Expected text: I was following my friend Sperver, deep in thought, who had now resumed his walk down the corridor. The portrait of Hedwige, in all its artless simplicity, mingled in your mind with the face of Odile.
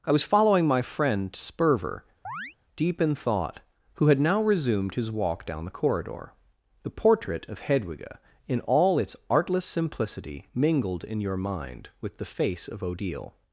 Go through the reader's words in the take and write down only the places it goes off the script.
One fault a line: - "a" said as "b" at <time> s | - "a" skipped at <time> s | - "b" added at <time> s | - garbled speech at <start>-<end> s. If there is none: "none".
none